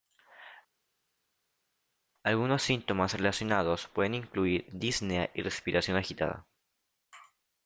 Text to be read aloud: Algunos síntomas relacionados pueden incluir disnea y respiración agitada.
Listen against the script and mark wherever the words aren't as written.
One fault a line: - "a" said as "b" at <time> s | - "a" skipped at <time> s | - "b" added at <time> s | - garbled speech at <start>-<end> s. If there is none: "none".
none